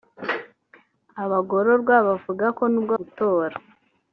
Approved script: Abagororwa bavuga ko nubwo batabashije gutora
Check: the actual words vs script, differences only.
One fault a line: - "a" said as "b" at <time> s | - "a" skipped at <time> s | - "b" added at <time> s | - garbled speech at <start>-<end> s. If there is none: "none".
- "batabashije" skipped at 2.9 s